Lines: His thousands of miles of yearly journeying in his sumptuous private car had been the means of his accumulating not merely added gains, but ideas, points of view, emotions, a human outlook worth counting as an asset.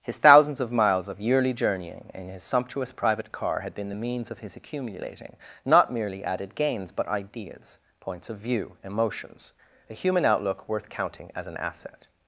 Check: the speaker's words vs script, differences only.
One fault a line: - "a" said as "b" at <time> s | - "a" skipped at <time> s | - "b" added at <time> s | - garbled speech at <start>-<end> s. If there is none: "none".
none